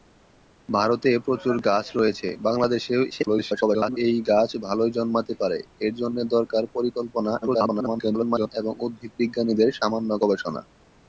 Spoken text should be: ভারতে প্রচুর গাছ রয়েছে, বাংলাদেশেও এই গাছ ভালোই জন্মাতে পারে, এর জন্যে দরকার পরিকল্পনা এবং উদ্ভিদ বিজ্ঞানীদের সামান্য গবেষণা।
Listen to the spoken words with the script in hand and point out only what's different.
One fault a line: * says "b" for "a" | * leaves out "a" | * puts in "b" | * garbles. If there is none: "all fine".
* garbles
* garbles